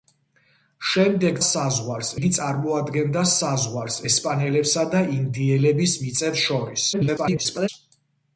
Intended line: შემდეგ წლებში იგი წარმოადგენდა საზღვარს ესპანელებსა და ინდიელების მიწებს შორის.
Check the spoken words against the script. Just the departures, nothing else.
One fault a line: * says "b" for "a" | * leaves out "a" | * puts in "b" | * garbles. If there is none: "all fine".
* says "საზღვარს" for "წლებში"
* garbles